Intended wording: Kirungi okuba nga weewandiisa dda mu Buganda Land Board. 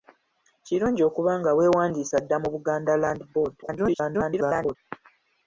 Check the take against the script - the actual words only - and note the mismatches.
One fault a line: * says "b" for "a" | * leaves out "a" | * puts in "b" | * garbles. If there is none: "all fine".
* garbles